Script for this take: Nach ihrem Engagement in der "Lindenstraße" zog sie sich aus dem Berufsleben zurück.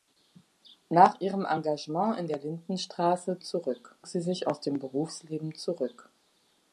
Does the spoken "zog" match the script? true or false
false